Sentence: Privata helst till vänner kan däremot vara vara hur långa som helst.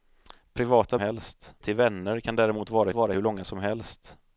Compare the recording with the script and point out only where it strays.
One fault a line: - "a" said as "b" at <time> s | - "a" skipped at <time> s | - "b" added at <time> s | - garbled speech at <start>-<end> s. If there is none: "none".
none